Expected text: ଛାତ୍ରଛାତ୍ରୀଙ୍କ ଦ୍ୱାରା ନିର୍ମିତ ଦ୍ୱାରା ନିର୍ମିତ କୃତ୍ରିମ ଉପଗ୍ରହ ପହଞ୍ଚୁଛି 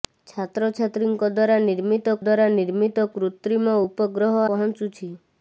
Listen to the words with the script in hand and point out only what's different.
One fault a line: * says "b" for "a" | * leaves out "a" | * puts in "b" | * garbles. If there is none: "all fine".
all fine